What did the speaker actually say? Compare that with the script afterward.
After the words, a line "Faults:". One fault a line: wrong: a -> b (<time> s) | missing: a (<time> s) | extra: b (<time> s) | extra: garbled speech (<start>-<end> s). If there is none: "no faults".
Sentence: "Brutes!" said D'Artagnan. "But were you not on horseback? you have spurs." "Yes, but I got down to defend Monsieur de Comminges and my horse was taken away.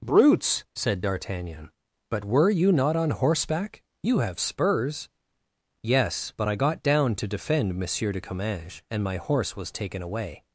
"Brutes!" said D'Artagnan. "But were you not on horseback? you have spurs." "Yes, but I got down to defend Monsieur de Comminges and my horse was taken away.
Faults:
no faults